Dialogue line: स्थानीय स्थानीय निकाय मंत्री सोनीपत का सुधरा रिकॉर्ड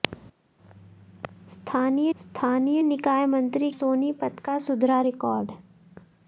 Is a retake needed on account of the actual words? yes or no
no